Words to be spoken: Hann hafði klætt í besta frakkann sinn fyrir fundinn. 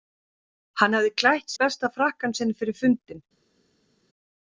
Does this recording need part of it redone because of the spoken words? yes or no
no